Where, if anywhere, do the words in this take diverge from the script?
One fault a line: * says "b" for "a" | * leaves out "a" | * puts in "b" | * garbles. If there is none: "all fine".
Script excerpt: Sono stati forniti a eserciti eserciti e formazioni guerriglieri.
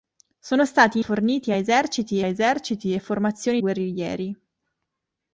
all fine